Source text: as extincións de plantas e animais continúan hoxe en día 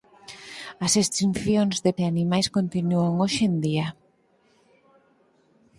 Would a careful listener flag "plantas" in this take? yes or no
yes